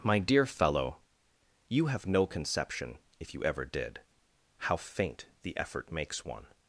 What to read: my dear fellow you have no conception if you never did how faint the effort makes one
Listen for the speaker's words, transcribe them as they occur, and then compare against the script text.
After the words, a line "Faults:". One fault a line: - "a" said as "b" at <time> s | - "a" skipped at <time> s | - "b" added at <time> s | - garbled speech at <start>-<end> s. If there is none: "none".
my dear fellow you have no conception if you ever did how faint the effort makes one
Faults:
- "never" said as "ever" at 3.4 s